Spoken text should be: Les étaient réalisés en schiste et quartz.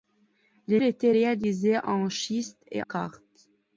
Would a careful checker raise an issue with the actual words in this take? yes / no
no